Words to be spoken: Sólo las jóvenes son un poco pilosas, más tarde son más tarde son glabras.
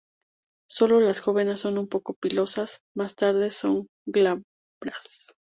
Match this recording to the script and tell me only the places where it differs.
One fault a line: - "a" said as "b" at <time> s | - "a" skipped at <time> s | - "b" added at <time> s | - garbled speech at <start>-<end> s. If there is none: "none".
- "más tarde son" skipped at 3.9 s